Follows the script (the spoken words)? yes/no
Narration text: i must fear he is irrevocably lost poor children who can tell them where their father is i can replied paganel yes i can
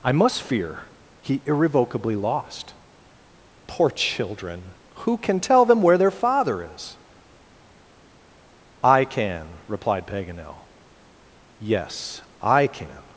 no